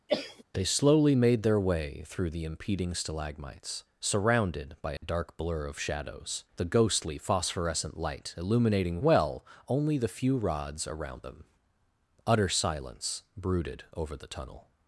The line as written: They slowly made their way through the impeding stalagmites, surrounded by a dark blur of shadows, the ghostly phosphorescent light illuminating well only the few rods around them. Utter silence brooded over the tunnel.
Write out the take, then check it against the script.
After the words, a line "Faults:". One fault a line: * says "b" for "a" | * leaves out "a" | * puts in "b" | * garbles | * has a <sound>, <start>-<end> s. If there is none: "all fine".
They slowly made their way through the impeding stalagmites, surrounded by a dark blur of shadows, the ghostly phosphorescent light illuminating well only the few rods around them. Utter silence brooded over the tunnel.
Faults:
* has a cough, 0.1-0.4 s
* has a dropout, 5.0-5.0 s